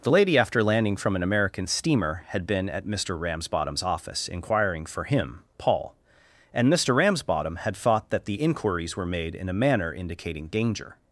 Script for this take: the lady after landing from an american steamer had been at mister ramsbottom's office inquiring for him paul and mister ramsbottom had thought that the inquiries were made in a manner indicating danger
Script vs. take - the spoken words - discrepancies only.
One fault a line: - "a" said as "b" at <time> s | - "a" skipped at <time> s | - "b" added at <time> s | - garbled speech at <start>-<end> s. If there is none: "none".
none